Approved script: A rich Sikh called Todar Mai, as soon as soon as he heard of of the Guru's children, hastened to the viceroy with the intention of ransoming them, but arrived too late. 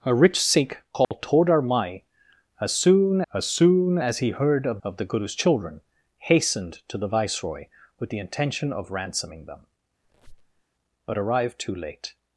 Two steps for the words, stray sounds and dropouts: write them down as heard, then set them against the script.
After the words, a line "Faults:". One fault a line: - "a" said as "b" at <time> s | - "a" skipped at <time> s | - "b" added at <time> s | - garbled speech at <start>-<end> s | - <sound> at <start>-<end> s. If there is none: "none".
A rich Sikh called Todar Mai, as soon as soon as he heard of of the Guru's children, hastened to the viceroy with the intention of ransoming them, but arrived too late.
Faults:
- dropout at 1.0-1.1 s
- squeak at 10.0-10.6 s